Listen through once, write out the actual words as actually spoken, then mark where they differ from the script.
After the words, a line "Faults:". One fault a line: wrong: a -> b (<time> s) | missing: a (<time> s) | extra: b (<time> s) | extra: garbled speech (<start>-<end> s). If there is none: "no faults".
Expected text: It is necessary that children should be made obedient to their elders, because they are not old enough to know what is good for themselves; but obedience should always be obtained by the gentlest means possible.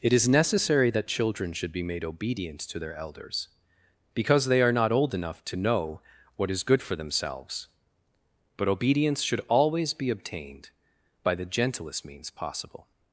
It is necessary that children should be made obedient to their elders, because they are not old enough to know what is good for themselves; but obedience should always be obtained by the gentlest means possible.
Faults:
no faults